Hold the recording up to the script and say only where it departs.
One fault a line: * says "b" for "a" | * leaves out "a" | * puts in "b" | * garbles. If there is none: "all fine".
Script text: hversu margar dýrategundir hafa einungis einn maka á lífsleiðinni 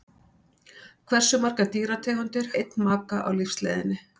* leaves out "hafa einungis"